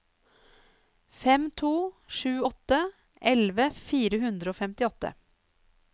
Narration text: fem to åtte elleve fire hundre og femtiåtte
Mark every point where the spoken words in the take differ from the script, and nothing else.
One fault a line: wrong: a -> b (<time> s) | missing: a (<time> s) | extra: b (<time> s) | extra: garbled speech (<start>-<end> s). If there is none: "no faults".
extra: sju (2.1 s)